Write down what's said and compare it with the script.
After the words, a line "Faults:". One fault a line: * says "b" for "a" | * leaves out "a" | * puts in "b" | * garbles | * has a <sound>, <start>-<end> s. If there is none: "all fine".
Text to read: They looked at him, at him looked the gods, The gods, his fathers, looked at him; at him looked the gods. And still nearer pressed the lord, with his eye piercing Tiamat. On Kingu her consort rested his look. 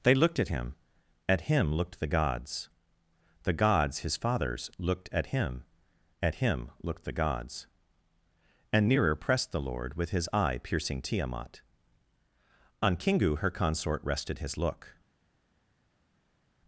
They looked at him, at him looked the gods, The gods, his fathers, looked at him; at him looked the gods. And nearer pressed the lord, with his eye piercing Tiamat. On Kingu her consort rested his look.
Faults:
* leaves out "still"